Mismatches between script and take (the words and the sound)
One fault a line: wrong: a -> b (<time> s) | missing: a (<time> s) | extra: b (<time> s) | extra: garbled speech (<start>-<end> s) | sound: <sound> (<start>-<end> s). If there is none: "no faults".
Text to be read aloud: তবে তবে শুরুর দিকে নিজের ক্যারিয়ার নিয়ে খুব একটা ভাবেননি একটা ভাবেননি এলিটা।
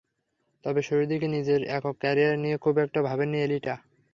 missing: তবে (0.8 s)
extra: একক (1.7 s)
missing: একটা ভাবেননি (3.4 s)